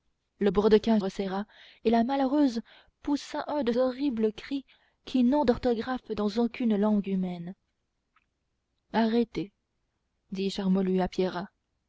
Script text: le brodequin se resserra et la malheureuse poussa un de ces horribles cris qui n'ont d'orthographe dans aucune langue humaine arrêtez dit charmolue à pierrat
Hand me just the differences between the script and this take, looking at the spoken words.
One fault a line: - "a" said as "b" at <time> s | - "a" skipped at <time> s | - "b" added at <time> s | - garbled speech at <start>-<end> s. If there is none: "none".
- "se" skipped at 1.0 s
- "ces" skipped at 3.7 s